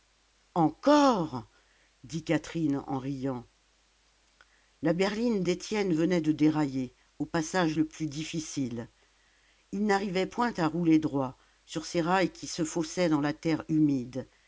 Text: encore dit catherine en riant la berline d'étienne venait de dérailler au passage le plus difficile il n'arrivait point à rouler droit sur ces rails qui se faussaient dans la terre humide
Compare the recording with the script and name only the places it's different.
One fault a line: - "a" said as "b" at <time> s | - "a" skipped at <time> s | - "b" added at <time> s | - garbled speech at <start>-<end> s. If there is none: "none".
none